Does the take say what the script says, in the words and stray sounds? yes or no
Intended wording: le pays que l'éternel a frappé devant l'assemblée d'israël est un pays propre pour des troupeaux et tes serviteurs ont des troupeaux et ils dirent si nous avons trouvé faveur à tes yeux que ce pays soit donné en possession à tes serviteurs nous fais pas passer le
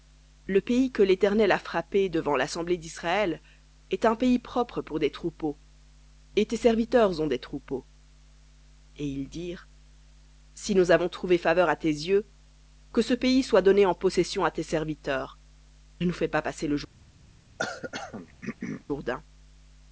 no